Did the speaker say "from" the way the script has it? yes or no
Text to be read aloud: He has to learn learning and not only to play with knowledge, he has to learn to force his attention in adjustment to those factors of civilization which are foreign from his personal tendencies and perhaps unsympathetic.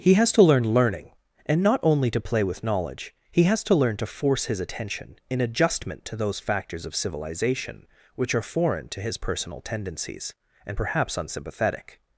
no